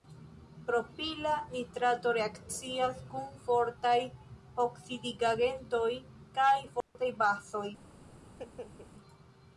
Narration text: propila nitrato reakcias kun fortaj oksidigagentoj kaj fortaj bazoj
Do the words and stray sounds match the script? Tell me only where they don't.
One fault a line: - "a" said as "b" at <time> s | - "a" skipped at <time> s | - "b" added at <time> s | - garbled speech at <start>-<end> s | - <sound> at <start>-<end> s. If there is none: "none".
- dropout at 6.8-7.0 s
- laugh at 8.2-8.9 s